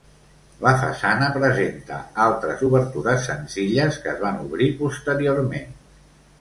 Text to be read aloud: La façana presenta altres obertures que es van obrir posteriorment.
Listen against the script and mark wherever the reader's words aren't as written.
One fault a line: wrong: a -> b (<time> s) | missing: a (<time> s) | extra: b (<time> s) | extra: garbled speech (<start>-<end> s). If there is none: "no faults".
extra: senzilles (3.3 s)